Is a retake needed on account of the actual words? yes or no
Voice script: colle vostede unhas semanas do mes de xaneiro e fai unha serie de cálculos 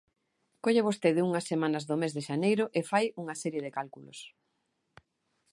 no